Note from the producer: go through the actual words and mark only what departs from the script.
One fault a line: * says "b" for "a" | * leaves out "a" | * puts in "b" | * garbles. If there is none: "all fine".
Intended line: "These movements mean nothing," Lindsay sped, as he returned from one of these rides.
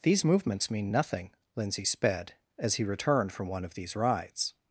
all fine